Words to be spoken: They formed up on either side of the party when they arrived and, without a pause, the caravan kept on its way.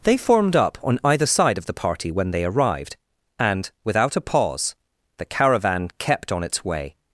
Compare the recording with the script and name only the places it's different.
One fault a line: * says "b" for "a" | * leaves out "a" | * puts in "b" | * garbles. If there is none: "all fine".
all fine